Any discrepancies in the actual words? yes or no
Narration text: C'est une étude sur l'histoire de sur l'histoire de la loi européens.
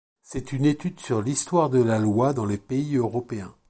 yes